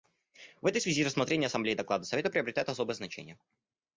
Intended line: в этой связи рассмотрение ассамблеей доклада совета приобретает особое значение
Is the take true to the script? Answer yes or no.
yes